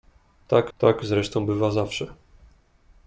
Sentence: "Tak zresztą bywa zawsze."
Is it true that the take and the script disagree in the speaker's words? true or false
true